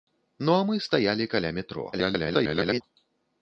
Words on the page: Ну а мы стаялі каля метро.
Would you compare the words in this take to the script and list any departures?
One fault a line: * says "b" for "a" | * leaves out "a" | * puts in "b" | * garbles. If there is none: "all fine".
* garbles